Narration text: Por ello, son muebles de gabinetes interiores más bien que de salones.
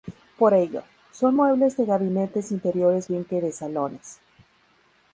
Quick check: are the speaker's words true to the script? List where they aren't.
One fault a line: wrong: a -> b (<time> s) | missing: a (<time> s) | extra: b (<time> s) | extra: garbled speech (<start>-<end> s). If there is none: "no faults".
missing: más (3.1 s)